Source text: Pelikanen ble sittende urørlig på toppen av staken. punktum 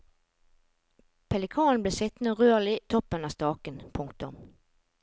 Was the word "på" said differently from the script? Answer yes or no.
yes